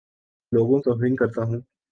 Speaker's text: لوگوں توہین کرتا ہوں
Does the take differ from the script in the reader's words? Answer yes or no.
no